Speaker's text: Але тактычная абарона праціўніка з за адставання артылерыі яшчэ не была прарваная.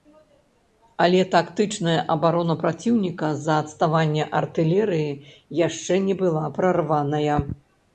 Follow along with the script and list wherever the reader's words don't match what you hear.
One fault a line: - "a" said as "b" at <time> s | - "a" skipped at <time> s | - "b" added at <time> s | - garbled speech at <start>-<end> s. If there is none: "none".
none